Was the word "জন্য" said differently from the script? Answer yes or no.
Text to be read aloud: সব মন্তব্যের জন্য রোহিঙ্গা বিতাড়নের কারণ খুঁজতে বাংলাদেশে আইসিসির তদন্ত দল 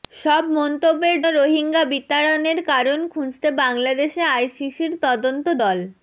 yes